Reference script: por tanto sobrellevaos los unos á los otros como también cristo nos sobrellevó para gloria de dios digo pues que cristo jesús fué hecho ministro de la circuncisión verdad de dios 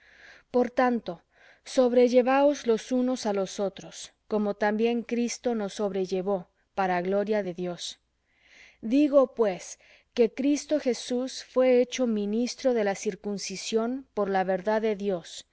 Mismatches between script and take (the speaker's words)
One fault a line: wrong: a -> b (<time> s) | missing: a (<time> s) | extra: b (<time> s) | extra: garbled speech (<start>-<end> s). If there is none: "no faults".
extra: por la (14.1 s)